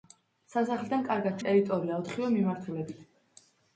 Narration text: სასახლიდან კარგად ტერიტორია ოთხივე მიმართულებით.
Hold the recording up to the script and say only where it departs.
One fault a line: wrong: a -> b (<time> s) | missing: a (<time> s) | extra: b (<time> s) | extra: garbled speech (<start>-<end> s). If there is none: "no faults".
no faults